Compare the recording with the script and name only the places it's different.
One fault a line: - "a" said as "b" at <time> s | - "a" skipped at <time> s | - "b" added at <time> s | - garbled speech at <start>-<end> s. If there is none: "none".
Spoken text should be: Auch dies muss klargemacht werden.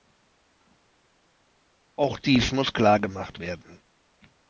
none